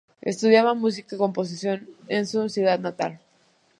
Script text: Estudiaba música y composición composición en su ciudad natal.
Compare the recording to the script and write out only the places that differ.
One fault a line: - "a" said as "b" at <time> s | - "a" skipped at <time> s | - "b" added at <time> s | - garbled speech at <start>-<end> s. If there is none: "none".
- "composición" skipped at 1.9 s